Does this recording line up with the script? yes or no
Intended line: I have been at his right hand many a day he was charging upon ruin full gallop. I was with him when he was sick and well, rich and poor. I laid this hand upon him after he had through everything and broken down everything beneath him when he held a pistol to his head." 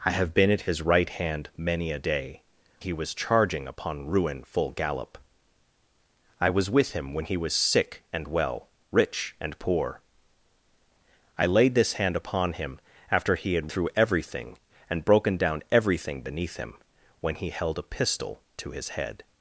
yes